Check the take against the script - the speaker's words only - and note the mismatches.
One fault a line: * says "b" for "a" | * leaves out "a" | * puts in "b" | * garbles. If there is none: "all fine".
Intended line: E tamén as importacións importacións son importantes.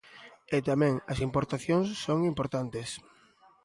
* leaves out "importacións"